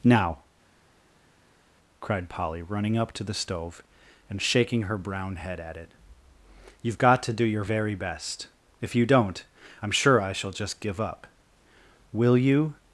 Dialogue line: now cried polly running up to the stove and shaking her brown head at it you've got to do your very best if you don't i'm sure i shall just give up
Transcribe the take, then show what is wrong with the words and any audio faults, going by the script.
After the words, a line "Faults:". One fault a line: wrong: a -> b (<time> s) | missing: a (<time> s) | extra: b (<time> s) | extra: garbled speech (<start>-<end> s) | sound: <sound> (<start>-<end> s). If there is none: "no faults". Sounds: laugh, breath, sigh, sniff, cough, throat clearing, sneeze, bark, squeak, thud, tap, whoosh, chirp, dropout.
now cried polly running up to the stove and shaking her brown head at it you've got to do your very best if you don't i'm sure i shall just give up will you
Faults:
extra: will you (12.1 s)